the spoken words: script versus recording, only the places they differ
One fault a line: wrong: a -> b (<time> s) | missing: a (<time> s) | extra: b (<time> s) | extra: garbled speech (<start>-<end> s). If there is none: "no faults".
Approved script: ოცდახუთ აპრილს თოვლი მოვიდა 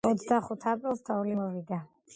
no faults